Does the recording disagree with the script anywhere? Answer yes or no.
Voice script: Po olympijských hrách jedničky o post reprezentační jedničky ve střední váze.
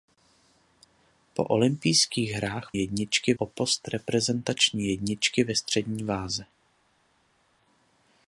no